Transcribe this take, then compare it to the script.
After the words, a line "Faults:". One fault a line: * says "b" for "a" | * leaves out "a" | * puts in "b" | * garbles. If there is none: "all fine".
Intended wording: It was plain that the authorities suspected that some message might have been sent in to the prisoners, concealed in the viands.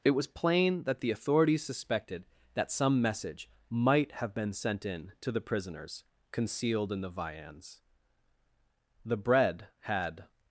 It was plain that the authorities suspected that some message might have been sent in to the prisoners, concealed in the viands. The bread had
Faults:
* puts in "The bread had"